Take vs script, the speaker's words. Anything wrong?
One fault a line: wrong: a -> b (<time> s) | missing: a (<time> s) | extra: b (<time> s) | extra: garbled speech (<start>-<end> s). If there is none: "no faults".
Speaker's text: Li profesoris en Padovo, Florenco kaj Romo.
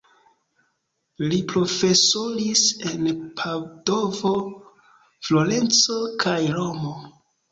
no faults